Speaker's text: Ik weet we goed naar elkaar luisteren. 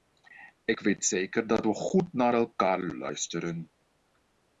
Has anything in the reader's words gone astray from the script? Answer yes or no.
yes